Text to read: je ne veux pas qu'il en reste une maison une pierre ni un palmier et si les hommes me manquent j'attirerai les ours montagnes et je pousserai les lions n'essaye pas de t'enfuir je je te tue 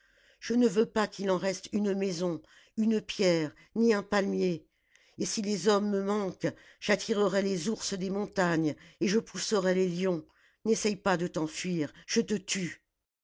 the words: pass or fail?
fail